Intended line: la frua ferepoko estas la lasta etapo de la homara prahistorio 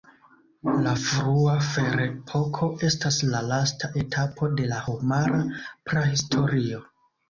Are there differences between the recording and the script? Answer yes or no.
no